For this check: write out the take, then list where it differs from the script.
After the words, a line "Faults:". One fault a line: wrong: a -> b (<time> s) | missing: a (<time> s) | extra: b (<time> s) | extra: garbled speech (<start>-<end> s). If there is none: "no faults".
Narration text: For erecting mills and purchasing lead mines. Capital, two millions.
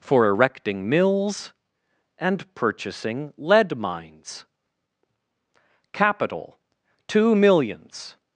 For erecting mills and purchasing lead mines. Capital, two millions.
Faults:
no faults